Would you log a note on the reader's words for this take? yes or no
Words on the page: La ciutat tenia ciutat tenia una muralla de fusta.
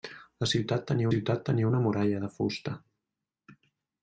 no